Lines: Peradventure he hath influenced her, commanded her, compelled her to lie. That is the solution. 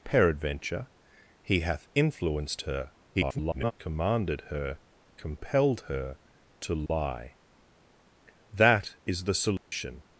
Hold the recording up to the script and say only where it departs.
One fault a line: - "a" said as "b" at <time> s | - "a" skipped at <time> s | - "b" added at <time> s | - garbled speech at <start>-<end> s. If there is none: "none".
- garbled speech at 3.1-3.7 s